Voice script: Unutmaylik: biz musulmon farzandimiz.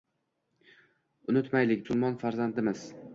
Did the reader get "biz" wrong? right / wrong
wrong